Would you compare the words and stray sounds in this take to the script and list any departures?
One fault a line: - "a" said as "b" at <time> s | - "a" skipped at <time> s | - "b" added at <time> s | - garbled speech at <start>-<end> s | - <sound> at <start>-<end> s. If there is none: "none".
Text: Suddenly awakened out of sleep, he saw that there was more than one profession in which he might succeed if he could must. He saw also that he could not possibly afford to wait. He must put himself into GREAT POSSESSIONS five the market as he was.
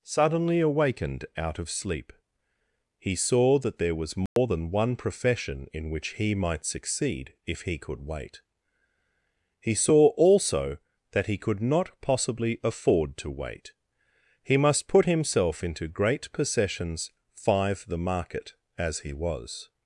- dropout at 4.3-4.4 s
- "must" said as "wait" at 8.1 s